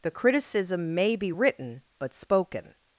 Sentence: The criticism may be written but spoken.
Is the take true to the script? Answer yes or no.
yes